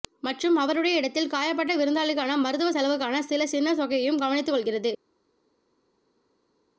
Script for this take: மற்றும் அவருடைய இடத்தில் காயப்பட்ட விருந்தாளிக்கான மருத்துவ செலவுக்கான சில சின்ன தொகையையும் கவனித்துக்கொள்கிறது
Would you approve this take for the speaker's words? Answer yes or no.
yes